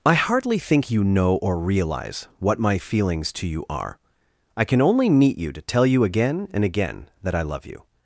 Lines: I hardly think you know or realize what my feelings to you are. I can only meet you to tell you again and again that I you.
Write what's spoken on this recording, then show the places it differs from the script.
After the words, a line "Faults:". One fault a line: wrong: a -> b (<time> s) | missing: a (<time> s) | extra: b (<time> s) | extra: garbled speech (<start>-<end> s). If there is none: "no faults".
I hardly think you know or realize what my feelings to you are. I can only meet you to tell you again and again that I love you.
Faults:
extra: love (7.4 s)